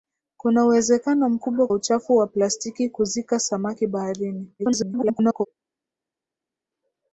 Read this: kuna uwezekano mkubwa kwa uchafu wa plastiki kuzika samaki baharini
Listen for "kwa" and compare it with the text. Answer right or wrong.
wrong